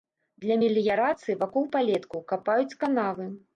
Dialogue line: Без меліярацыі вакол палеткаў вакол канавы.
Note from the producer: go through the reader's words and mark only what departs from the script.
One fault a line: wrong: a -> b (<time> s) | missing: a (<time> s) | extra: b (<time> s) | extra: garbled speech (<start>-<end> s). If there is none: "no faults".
wrong: Без -> Для (0.5 s)
wrong: вакол -> капаюць (2.3 s)